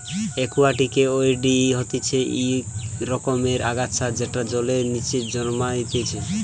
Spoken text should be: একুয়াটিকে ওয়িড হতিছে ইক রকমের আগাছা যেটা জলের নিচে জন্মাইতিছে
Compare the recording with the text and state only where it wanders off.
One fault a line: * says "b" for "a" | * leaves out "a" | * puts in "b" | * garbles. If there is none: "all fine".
all fine